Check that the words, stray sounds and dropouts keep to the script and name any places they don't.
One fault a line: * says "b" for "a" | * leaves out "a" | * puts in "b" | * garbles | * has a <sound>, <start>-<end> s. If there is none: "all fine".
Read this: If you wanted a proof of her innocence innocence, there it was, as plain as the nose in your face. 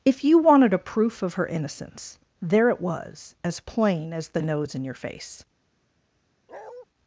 * leaves out "innocence"
* has a bark, 6.5-6.9 s